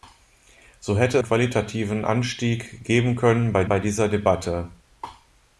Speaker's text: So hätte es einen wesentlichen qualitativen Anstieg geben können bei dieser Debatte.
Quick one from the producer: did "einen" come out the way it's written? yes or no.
no